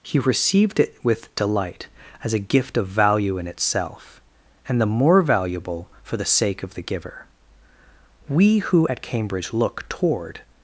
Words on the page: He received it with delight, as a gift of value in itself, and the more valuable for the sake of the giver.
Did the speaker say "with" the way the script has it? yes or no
yes